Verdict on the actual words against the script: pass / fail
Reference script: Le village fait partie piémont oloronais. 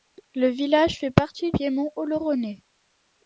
pass